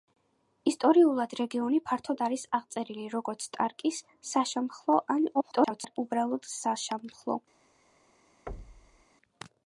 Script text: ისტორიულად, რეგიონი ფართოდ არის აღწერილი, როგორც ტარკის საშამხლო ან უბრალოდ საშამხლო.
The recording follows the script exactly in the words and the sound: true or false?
false